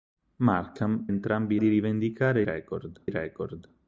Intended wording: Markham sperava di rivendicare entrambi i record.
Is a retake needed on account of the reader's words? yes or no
yes